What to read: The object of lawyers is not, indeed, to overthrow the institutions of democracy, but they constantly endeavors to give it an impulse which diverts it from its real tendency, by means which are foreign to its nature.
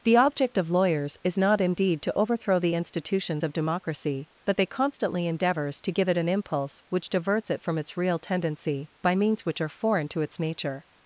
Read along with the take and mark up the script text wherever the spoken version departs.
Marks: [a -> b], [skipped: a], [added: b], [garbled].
The object of lawyers is not, indeed, to overthrow the institutions of democracy, but they constantly endeavors to give it an impulse which diverts it from its real tendency, by means which are foreign to its nature.